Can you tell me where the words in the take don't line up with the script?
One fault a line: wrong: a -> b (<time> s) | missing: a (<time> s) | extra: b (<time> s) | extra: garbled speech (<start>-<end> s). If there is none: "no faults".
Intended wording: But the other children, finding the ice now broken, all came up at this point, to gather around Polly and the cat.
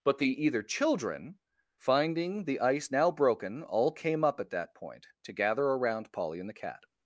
wrong: other -> either (0.4 s)
wrong: this -> that (4.5 s)